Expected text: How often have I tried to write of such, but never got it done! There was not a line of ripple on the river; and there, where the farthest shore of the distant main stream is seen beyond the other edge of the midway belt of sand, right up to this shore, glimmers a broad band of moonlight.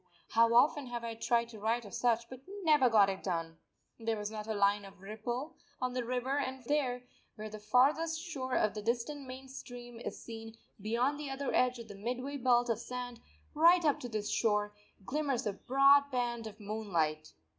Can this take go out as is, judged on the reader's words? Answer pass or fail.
pass